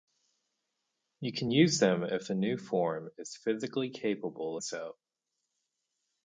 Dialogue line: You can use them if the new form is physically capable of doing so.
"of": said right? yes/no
no